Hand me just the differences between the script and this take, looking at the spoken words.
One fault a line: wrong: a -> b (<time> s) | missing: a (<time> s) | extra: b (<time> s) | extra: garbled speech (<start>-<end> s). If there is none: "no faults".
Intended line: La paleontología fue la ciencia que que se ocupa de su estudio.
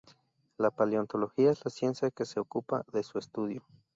wrong: fue -> es (1.5 s)
missing: que (2.2 s)